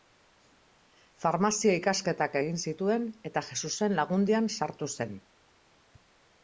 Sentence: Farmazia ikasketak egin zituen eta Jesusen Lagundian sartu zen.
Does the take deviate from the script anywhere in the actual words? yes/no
no